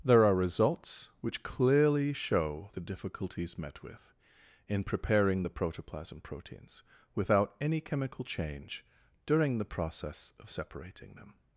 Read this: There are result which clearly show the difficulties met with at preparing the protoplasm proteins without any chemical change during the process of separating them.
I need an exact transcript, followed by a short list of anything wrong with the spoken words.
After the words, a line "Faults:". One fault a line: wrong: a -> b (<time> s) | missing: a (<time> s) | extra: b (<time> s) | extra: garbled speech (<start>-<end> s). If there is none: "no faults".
There are results which clearly show the difficulties met with in preparing the protoplasm proteins without any chemical change during the process of separating them.
Faults:
wrong: result -> results (0.3 s)
wrong: at -> in (4.7 s)